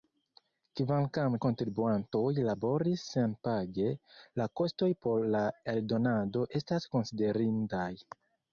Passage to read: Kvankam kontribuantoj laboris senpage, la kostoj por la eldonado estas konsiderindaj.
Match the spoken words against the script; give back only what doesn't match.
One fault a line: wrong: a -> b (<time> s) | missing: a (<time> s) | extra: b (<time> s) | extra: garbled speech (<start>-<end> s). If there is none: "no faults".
no faults